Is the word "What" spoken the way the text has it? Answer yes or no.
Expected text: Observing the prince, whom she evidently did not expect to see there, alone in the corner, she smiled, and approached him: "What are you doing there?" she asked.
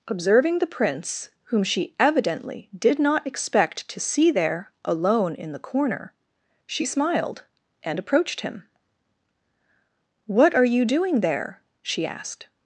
yes